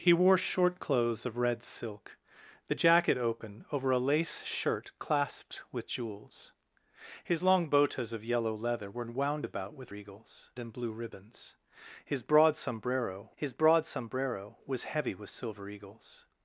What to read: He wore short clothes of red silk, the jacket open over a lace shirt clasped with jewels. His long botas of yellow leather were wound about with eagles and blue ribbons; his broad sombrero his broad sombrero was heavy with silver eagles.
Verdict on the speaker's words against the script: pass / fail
pass